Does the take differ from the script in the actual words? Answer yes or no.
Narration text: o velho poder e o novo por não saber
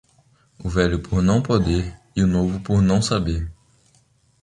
yes